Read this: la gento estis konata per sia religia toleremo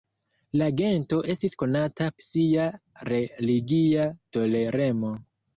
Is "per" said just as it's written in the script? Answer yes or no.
no